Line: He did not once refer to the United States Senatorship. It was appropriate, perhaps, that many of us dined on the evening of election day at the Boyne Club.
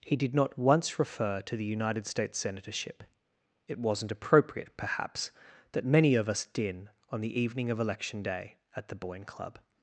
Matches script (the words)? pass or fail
fail